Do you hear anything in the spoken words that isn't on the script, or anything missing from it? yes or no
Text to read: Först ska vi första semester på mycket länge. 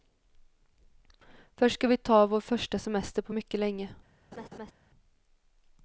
yes